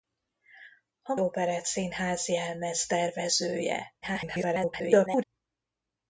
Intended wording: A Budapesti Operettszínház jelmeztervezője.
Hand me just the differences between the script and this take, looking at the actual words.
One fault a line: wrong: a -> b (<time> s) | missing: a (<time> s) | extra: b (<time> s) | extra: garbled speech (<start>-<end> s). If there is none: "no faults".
missing: Budapesti (1.1 s)
extra: garbled speech (4.0-5.2 s)